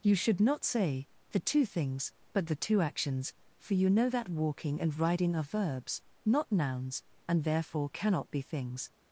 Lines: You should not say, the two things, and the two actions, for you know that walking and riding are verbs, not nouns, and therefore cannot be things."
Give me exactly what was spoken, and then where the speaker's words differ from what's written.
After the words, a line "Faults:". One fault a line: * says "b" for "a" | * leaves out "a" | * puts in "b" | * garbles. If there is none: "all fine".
You should not say, the two things, but the two actions, for you know that walking and riding are verbs, not nouns, and therefore cannot be things."
Faults:
* says "but" for "and"